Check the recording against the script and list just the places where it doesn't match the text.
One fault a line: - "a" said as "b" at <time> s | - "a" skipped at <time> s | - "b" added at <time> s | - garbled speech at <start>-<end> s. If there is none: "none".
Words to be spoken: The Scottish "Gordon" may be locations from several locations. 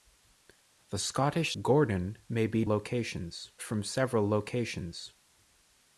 none